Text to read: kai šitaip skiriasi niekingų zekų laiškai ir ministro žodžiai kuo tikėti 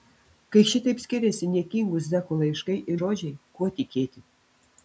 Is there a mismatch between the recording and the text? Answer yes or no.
yes